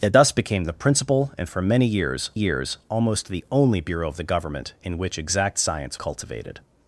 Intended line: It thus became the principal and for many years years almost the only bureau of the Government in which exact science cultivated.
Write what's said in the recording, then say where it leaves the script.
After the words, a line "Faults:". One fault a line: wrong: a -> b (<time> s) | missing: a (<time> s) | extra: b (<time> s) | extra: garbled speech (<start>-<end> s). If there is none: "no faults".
It thus became the principal and for many years years almost the only bureau of the Government in which exact science cultivated.
Faults:
no faults